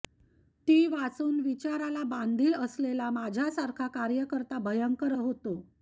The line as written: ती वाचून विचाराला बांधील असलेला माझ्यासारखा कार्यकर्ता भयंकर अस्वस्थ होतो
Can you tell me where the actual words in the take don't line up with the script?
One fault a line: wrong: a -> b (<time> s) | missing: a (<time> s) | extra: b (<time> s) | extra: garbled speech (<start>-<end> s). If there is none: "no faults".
missing: अस्वस्थ (5.1 s)